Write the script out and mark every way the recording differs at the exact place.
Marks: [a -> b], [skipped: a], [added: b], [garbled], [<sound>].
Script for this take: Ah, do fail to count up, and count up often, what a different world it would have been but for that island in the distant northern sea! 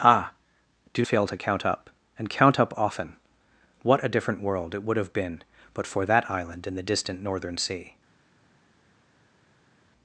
Ah, do fail to count up, and count up often, what a different world it would have been but for that island in the distant northern sea!